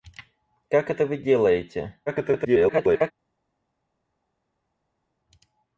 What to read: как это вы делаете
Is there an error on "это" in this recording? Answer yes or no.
no